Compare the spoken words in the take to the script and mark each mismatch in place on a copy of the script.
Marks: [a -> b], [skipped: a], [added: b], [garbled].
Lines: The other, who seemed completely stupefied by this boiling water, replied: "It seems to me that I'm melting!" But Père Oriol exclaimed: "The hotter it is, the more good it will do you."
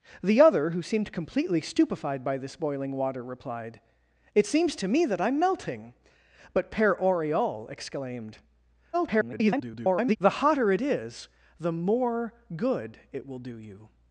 The other, who seemed completely stupefied by this boiling water, replied: "It seems to me that I'm melting!" But Père Oriol exclaimed: [garbled] "The hotter it is, the more good it will do you."